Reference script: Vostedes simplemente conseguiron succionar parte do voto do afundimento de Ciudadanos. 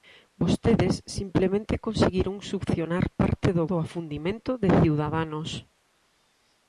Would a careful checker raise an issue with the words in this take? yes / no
yes